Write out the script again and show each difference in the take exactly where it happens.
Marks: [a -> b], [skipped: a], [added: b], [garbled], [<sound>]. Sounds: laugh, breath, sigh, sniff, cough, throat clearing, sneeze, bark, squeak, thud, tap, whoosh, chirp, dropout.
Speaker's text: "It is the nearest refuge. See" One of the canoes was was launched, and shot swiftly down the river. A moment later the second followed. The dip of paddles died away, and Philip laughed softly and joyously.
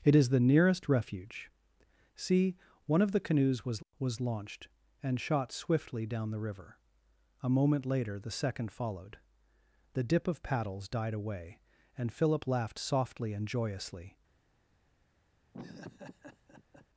"It is the nearest refuge. See" One of the canoes was was launched, and shot swiftly down the river. A moment later the second followed. The dip of paddles died away, and Philip laughed softly and joyously. [laugh]